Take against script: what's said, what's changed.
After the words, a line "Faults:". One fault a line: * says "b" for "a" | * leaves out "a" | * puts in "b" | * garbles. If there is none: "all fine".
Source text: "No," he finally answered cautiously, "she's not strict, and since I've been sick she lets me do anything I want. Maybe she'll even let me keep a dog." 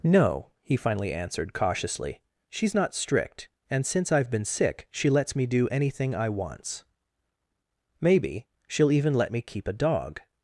"No," he finally answered cautiously, "she's not strict, and since I've been sick she lets me do anything I wants. Maybe she'll even let me keep a dog."
Faults:
* says "wants" for "want"